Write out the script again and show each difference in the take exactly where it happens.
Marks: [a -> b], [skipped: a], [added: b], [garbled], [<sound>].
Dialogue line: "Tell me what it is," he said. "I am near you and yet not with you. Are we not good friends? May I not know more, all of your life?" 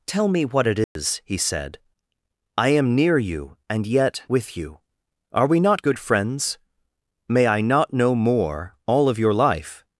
"Tell me what it is," [dropout] he said. "I am near you and yet [skipped: not] with you. Are we not good friends? May I not know more, all of your life?"